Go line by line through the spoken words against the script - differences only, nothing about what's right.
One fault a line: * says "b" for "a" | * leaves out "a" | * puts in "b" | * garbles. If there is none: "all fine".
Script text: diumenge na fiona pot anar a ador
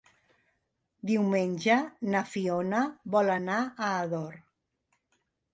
* says "vol" for "pot"